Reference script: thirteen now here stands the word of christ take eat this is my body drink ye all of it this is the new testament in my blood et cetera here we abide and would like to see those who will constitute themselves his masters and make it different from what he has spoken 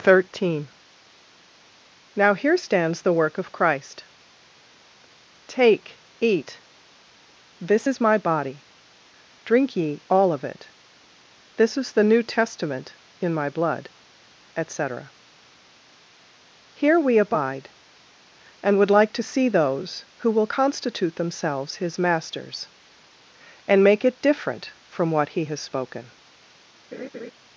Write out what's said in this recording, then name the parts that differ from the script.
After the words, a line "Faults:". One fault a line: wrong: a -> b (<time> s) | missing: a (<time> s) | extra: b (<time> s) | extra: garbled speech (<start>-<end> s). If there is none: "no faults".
thirteen now here stands the work of christ take eat this is my body drink ye all of it this is the new testament in my blood et cetera here we abide and would like to see those who will constitute themselves his masters and make it different from what he has spoken
Faults:
wrong: word -> work (3.1 s)